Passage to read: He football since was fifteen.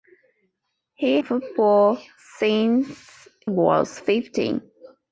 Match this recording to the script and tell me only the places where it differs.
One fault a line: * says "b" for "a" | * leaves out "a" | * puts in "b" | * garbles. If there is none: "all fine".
all fine